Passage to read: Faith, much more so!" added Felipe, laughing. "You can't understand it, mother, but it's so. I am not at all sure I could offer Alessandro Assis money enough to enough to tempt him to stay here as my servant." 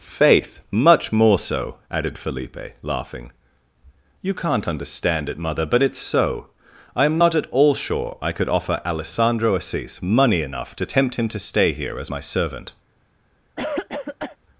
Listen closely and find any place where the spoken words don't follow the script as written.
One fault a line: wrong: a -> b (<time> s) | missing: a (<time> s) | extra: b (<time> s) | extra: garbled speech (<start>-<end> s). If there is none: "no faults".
missing: enough to (10.9 s)